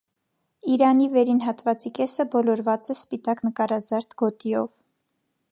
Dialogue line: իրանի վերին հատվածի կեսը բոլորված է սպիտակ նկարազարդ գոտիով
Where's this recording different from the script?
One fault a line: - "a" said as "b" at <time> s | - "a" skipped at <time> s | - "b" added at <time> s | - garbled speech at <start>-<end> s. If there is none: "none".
none